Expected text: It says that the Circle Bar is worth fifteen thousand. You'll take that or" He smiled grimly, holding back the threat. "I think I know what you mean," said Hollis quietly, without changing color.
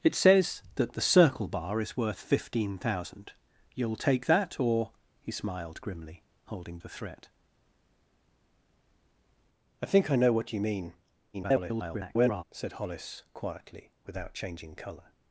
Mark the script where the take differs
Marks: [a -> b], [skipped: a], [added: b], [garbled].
It says that the Circle Bar is worth fifteen thousand. You'll take that or" He smiled grimly, holding [skipped: back] the threat. "I think I know what you mean," [garbled] said Hollis quietly, without changing color.